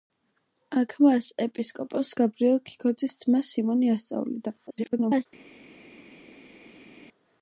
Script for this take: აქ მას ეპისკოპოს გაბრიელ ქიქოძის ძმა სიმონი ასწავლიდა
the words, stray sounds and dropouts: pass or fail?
fail